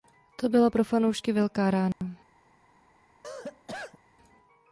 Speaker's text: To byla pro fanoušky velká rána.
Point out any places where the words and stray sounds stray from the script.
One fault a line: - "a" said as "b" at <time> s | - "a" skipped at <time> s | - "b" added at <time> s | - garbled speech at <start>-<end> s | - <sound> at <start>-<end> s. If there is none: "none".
- dropout at 1.9-2.0 s
- cough at 3.2-4.0 s